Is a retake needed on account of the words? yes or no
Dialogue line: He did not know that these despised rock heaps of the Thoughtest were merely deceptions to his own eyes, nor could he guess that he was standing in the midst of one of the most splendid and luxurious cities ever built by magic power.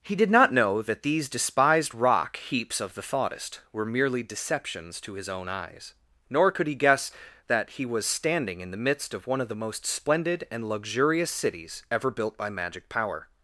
no